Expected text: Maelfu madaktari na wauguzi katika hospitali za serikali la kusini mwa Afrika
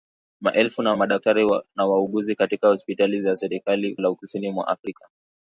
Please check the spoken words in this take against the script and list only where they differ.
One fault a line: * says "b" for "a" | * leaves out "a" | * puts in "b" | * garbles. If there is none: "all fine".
all fine